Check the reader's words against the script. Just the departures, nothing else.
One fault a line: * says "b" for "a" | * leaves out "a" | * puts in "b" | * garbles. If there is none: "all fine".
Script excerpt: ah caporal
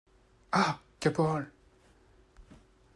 all fine